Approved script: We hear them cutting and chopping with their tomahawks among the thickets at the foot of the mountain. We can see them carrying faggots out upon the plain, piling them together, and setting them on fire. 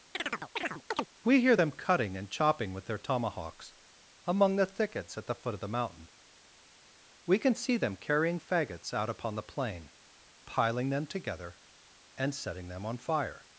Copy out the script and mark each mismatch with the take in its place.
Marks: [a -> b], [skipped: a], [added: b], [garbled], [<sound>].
[chirp] We hear them cutting and chopping with their tomahawks among the thickets at the foot of the mountain. We can see them carrying faggots out upon the plain, piling them together, and setting them on fire.